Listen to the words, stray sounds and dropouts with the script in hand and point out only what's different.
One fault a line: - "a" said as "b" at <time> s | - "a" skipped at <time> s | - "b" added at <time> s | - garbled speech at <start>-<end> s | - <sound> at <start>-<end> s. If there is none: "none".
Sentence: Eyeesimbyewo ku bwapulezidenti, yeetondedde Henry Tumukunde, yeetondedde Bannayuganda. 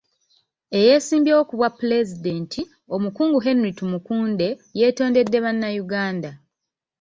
- "yeetondedde" said as "omukungu" at 3.0 s